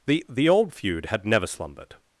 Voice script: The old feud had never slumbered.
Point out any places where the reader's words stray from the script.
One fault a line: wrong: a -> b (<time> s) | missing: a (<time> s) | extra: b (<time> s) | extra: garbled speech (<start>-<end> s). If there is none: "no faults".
extra: the (0.3 s)